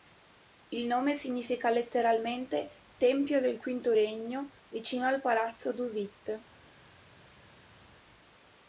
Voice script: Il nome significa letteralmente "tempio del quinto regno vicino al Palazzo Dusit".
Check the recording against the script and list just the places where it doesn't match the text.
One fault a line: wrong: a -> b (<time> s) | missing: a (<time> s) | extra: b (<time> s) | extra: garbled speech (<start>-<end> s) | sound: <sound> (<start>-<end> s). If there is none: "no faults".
no faults